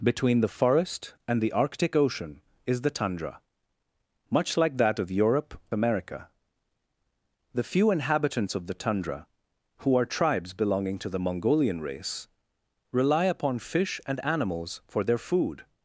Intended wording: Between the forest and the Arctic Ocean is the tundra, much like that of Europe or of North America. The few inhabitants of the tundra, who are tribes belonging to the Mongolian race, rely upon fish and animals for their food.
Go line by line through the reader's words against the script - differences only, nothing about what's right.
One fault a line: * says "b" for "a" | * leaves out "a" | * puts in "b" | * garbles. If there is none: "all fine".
* leaves out "or of North"